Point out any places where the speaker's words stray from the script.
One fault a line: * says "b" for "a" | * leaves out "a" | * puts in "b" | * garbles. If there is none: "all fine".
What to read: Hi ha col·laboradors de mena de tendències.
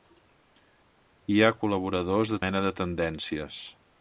all fine